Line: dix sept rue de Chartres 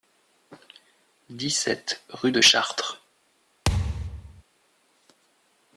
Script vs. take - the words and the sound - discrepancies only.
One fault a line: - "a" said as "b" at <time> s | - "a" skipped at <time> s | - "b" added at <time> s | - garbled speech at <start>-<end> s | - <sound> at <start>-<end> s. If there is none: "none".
- thud at 3.7-4.4 s